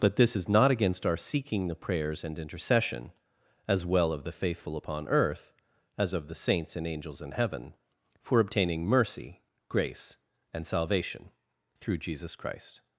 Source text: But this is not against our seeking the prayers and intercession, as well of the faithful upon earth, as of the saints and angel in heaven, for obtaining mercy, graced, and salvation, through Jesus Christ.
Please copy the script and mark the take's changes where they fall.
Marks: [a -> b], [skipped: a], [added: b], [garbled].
But this is not against our seeking the prayers and intercession, as well of the faithful upon earth, as of the saints and [angel -> angels] in heaven, for obtaining mercy, [graced, -> grace] and salvation, through Jesus Christ.